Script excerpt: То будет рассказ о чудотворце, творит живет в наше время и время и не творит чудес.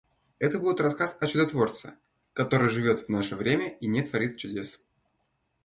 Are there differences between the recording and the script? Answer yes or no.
yes